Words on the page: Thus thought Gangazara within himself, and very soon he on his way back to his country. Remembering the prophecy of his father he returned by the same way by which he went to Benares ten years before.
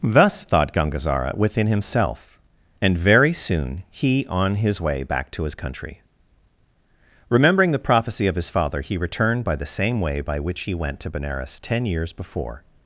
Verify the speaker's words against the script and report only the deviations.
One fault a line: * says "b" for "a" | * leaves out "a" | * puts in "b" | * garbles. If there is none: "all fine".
all fine